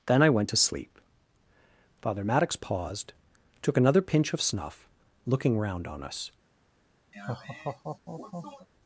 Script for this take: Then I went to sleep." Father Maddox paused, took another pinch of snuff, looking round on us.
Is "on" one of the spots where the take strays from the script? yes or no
no